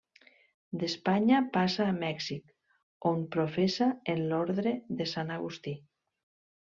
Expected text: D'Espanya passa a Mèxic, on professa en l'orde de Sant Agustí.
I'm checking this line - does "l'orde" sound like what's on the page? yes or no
yes